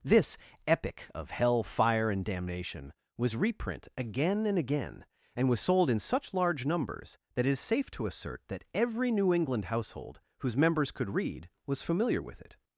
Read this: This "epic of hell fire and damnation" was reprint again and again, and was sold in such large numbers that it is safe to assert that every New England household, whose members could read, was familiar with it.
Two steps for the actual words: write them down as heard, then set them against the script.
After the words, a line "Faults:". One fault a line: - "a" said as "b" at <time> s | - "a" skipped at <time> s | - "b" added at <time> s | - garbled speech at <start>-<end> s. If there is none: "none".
This "epic of hell fire and damnation" was reprint again and again, and was sold in such large numbers that it is safe to assert that every New England household, whose members could read, was familiar with it.
Faults:
none